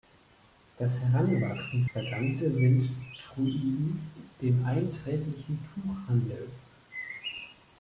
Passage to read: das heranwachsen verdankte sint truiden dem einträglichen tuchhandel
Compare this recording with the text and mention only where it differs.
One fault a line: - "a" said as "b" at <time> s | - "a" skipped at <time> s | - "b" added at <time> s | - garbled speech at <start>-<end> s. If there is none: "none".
none